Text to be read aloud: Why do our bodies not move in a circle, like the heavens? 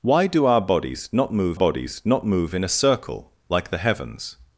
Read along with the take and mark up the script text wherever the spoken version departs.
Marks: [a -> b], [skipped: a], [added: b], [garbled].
Why do our bodies not move [added: bodies not move] in a circle, like the heavens?